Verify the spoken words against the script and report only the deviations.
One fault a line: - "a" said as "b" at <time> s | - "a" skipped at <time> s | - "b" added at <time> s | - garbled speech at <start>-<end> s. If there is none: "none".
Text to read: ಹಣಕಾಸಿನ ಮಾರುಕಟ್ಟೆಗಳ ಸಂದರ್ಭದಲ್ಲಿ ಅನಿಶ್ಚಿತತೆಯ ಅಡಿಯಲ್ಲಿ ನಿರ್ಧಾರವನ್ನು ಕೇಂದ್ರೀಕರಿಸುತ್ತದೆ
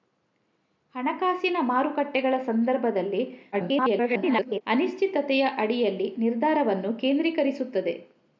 - garbled speech at 3.5-4.6 s